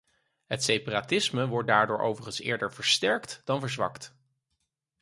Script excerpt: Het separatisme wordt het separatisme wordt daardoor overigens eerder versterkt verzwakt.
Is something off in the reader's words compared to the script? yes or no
yes